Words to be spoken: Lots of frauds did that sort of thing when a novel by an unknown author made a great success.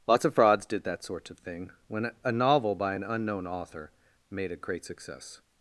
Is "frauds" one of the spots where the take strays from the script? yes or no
no